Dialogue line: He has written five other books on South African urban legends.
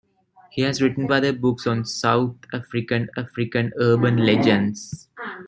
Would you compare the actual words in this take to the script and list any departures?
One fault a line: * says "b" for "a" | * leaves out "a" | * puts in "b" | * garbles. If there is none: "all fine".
* leaves out "five"
* puts in "African"